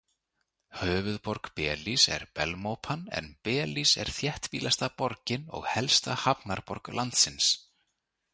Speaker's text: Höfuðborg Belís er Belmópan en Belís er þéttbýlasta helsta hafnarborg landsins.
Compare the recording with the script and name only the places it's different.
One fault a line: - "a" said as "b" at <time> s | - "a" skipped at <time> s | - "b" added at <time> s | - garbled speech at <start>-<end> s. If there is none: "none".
- "borgin og" added at 5.0 s